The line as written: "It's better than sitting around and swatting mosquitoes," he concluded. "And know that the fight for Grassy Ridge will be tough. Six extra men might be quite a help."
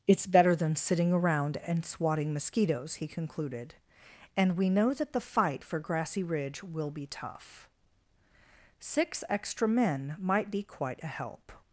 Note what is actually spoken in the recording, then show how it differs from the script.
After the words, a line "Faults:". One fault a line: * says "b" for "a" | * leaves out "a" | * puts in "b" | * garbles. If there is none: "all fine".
"It's better than sitting around and swatting mosquitoes," he concluded. "And we know that the fight for Grassy Ridge will be tough. Six extra men might be quite a help."
Faults:
* puts in "we"